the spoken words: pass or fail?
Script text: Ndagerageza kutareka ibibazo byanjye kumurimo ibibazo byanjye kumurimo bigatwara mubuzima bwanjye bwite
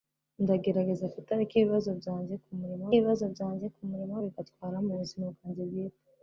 pass